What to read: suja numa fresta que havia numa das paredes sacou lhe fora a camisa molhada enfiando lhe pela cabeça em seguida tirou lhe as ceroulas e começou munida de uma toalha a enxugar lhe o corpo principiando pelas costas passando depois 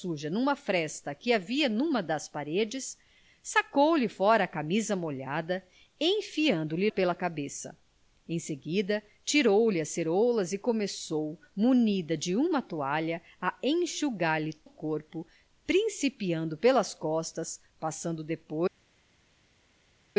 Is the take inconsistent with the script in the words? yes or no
no